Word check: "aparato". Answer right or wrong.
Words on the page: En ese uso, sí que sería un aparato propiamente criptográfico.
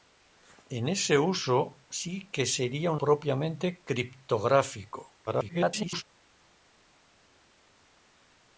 wrong